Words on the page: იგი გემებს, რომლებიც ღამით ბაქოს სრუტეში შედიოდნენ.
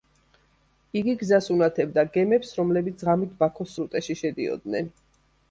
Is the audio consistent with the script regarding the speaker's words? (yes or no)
no